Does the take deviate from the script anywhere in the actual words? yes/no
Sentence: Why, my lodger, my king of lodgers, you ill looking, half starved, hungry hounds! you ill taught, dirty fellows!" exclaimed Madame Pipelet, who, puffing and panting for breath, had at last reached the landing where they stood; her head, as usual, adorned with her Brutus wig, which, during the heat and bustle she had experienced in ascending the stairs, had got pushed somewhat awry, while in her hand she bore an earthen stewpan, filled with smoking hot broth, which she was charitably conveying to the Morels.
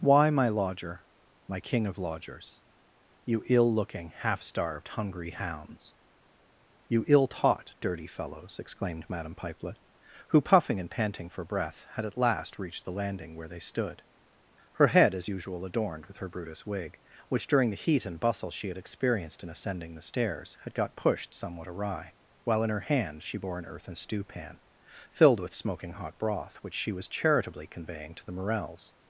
no